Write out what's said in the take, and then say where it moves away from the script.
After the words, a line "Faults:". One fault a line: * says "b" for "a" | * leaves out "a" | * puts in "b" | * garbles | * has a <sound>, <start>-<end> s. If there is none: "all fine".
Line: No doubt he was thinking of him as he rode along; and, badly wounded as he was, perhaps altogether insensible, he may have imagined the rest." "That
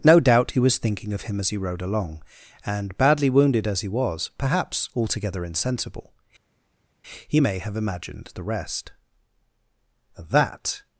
No doubt he was thinking of him as he rode along; and, badly wounded as he was, perhaps altogether insensible, he may have imagined the rest." "That
Faults:
all fine